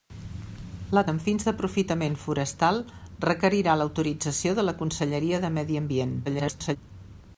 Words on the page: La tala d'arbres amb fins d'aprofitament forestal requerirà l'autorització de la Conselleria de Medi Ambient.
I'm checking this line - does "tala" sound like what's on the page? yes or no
no